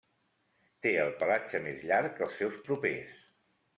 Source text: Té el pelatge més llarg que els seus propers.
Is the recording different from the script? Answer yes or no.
no